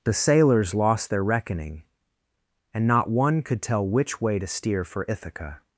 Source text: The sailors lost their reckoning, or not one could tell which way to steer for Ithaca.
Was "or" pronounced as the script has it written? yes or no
no